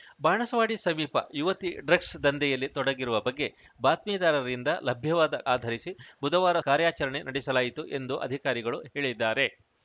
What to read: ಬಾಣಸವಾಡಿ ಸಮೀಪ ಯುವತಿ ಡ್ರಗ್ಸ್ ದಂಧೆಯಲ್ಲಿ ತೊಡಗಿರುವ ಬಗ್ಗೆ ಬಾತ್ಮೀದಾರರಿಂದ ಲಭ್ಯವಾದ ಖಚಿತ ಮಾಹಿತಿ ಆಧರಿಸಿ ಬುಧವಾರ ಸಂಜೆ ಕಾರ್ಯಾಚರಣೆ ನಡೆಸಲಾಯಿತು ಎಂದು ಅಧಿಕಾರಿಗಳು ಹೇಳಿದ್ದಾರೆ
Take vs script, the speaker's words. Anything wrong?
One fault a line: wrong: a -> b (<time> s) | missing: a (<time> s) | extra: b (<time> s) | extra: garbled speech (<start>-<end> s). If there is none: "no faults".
missing: ಖಚಿತ ಮಾಹಿತಿ (5.4 s)
missing: ಸಂಜೆ (6.6 s)